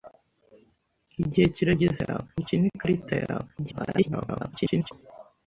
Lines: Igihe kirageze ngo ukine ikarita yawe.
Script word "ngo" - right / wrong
wrong